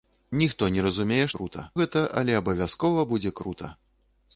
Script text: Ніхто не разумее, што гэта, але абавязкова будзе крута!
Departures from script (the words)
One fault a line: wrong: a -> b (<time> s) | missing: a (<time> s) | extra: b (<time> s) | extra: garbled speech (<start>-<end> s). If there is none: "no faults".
wrong: што -> крута (1.4 s)